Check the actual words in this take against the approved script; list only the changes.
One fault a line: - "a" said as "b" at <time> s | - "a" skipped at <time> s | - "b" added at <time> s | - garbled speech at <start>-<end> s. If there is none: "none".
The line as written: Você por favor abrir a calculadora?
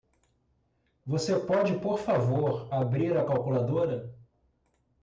- "pode" added at 1.4 s